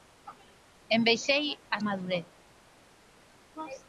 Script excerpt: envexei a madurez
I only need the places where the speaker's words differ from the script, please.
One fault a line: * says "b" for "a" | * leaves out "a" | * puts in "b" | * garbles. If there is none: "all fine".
all fine